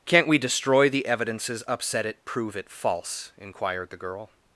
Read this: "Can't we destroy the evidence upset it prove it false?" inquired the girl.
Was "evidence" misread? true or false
true